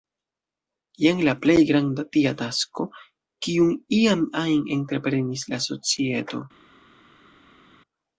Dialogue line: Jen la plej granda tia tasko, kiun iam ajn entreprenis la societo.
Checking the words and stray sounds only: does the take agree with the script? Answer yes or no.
yes